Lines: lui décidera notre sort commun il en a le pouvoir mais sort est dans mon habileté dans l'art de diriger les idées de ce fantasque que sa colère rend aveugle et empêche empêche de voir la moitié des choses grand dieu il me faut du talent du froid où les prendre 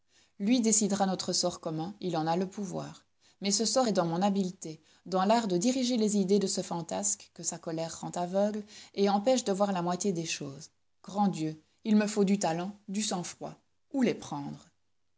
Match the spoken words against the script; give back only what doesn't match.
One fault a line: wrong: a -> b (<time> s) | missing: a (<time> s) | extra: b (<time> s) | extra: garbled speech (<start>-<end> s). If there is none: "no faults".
extra: ce (3.5 s)
missing: empêche (9.4 s)
extra: sang (13.0 s)